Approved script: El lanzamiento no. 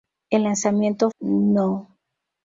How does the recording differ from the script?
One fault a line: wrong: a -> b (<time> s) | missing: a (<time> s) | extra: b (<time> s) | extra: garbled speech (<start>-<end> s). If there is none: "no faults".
no faults